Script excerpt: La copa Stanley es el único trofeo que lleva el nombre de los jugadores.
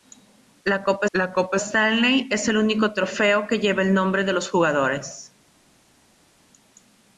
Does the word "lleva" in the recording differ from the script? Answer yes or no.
no